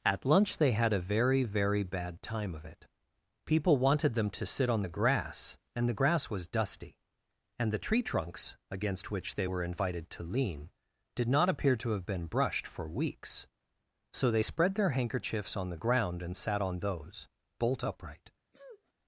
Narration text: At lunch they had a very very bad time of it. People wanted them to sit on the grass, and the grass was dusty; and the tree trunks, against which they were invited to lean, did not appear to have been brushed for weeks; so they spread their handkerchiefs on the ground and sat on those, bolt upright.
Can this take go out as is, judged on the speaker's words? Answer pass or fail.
pass